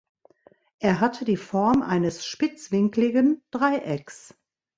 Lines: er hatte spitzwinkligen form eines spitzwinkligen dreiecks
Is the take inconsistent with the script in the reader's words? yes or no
yes